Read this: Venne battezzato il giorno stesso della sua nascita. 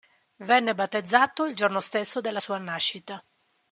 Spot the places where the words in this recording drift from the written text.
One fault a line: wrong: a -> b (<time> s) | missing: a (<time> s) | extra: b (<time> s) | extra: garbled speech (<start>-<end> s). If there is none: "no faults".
no faults